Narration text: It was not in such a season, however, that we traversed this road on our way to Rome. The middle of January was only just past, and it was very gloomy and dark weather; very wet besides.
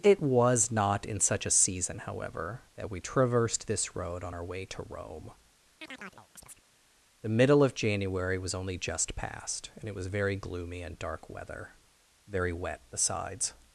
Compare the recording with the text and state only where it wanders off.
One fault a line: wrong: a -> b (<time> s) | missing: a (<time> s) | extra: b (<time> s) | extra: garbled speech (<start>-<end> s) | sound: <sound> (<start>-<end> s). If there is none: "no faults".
sound: chirp (5.8-6.6 s)